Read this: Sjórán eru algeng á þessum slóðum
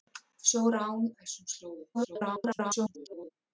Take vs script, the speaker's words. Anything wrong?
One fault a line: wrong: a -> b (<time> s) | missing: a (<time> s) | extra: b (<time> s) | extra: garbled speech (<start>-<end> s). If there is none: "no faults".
missing: eru algeng (1.0 s)
extra: garbled speech (1.9-3.3 s)